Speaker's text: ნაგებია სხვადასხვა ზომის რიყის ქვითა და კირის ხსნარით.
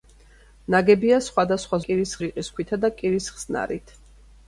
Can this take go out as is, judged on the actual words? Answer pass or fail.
fail